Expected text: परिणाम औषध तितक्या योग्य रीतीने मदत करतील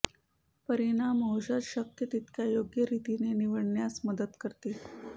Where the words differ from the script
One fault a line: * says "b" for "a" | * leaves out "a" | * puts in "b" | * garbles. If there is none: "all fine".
* puts in "शक्य"
* puts in "निवडण्यास"